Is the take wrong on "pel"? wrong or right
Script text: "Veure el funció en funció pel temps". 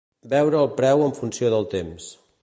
wrong